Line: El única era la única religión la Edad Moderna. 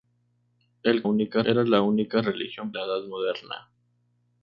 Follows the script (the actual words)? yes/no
yes